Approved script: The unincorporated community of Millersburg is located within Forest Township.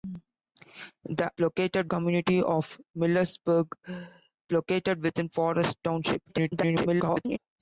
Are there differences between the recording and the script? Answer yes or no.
yes